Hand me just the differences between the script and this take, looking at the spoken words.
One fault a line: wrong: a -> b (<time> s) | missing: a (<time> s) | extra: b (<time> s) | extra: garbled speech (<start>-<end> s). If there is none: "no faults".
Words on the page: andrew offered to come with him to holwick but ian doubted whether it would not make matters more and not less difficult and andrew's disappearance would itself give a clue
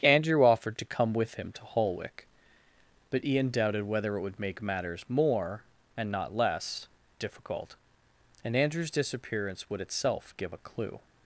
missing: not (4.4 s)